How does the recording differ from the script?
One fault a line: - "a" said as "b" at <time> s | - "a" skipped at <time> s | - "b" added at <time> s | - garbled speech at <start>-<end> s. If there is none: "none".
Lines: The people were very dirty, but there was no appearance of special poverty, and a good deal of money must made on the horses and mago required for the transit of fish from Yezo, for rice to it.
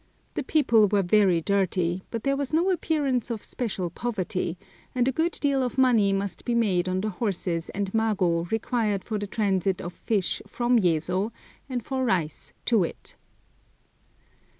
- "be" added at 6.4 s
- "and" added at 11.7 s